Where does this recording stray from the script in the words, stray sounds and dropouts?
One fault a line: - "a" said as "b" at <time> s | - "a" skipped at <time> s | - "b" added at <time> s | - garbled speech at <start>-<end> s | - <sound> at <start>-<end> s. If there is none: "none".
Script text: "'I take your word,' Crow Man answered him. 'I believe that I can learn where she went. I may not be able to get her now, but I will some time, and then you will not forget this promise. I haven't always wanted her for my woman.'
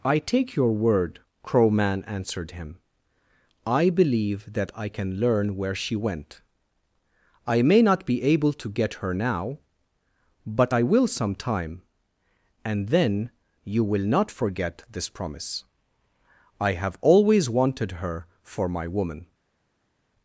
- "haven't" said as "have" at 16.7 s